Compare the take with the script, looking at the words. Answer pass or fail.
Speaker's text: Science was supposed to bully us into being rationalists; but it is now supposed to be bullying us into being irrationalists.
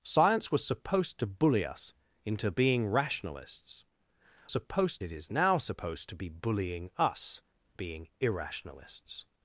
fail